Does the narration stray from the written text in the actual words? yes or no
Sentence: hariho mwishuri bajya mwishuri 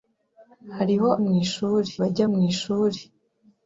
no